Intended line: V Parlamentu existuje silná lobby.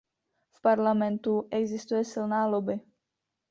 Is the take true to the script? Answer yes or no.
yes